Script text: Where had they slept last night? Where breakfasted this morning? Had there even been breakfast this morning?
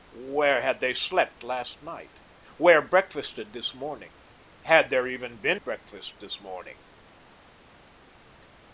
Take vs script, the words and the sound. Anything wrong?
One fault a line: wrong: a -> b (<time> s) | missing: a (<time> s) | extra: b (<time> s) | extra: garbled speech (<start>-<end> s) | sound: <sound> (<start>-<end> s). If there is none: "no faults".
no faults